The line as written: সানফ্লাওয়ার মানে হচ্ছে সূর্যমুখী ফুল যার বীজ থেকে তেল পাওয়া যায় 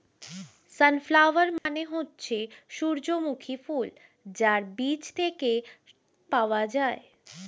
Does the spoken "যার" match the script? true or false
true